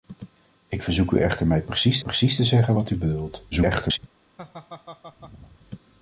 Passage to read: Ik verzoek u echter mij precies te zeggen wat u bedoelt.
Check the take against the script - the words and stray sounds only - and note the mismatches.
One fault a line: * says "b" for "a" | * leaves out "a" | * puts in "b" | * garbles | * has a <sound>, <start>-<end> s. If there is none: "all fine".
* puts in "precies"
* garbles
* has a laugh, 4.4-5.6 s